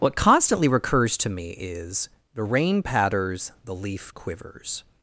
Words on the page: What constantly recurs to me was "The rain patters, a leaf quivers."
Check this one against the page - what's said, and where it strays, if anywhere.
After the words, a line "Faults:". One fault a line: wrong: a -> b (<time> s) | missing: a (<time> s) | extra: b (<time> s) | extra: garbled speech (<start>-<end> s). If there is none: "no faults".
What constantly recurs to me is "The rain patters, the leaf quivers."
Faults:
wrong: was -> is (1.5 s)
wrong: a -> the (3.6 s)